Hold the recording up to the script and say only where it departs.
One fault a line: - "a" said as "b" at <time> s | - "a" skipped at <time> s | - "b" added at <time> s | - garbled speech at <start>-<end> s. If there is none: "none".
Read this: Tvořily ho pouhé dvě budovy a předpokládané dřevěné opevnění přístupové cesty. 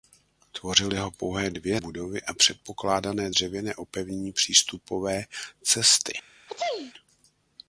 none